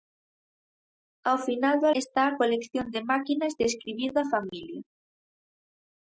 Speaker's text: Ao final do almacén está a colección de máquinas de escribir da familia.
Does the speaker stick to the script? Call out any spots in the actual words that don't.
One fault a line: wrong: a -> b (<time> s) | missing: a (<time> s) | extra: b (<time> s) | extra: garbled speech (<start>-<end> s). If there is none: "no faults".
missing: almacén (1.9 s)